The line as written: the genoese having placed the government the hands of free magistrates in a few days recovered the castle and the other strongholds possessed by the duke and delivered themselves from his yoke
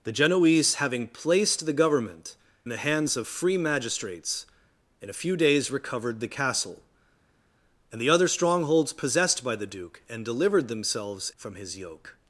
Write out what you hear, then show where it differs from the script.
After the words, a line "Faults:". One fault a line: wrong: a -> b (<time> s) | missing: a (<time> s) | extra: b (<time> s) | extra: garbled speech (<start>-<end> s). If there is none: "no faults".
the genoese having placed the government the hands of free magistrates in a few days recovered the castle and the other strongholds possessed by the duke and delivered themselves from his yoke
Faults:
no faults